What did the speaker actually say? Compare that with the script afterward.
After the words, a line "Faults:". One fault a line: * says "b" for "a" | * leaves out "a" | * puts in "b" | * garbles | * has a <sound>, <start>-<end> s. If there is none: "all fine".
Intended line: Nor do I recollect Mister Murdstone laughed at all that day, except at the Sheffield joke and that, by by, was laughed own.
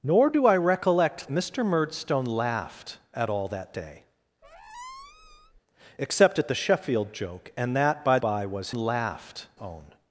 Nor do I recollect Mister Murdstone laughed at all that day, except at the Sheffield joke and that, by by, was laughed own.
Faults:
* has a squeak, 4.4-5.6 s